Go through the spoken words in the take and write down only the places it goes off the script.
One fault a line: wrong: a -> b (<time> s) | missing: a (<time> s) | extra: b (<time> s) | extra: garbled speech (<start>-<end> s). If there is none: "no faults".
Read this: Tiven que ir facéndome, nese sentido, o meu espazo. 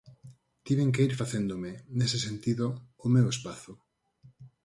no faults